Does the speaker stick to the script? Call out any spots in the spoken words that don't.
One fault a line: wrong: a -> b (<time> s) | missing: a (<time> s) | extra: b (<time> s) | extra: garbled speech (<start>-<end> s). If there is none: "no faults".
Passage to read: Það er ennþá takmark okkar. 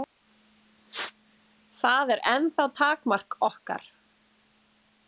no faults